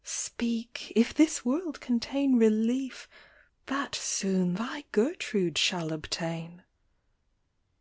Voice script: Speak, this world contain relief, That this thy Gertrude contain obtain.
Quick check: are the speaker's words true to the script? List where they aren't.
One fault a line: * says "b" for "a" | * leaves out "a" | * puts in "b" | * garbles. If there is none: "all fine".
* puts in "if"
* says "soon" for "this"
* says "shall" for "contain"